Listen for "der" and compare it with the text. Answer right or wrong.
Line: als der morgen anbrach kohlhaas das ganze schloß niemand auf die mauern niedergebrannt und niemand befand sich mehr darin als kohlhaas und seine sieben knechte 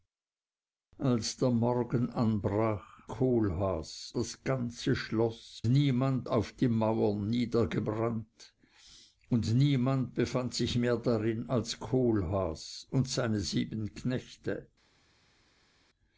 right